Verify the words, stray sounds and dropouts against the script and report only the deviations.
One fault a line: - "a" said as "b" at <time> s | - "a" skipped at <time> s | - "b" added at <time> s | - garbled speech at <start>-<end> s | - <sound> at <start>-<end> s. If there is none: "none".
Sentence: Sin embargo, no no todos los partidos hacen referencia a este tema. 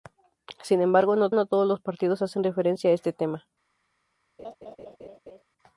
- laugh at 4.4-5.4 s